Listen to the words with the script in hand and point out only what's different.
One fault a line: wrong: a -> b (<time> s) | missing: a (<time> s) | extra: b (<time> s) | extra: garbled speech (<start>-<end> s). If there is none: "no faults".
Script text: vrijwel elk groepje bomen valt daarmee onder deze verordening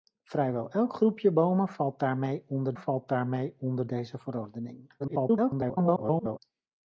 extra: valt daarmee onder (2.7 s)
extra: garbled speech (5.0-6.4 s)